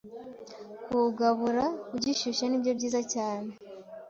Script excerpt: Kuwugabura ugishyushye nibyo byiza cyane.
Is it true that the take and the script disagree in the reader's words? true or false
false